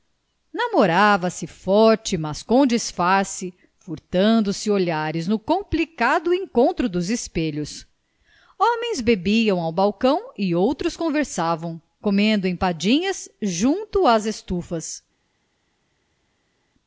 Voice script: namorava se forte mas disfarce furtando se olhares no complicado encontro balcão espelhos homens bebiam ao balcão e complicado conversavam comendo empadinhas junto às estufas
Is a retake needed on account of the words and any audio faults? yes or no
yes